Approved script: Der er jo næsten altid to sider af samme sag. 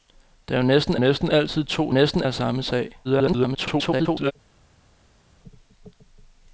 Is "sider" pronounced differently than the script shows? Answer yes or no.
yes